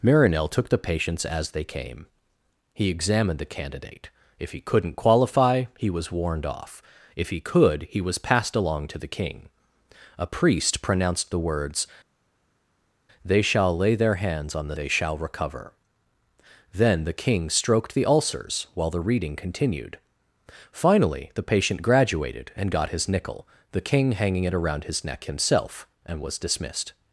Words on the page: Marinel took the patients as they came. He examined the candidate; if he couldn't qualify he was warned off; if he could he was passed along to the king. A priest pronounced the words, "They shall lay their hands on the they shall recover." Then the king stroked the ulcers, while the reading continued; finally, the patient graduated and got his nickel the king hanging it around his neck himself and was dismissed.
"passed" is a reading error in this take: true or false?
false